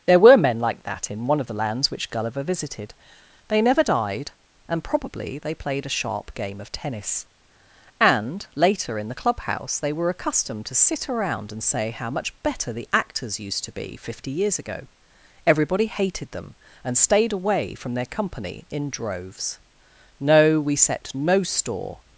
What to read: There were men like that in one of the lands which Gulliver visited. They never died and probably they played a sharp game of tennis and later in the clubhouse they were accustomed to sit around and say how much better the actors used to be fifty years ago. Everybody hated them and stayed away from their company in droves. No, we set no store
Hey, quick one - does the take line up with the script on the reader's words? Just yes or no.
yes